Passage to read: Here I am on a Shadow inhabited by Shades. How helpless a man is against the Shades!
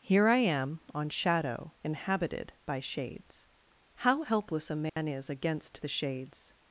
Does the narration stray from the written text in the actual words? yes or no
yes